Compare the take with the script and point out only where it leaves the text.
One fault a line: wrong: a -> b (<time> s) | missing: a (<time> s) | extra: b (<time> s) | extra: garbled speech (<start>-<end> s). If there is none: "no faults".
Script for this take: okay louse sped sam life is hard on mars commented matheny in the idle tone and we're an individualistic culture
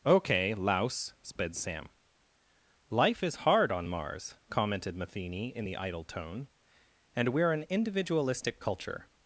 no faults